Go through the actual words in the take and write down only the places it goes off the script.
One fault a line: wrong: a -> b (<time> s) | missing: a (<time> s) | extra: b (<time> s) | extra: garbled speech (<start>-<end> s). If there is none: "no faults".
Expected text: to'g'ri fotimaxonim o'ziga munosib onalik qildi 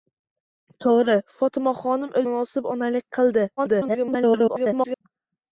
missing: o'ziga (2.2 s)
extra: garbled speech (3.6-5.0 s)